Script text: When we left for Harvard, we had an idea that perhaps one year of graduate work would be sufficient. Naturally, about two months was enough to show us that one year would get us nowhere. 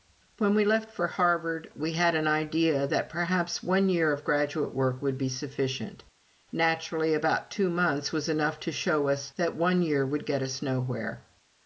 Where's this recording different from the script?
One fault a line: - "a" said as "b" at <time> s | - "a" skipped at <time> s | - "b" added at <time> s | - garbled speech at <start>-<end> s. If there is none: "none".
none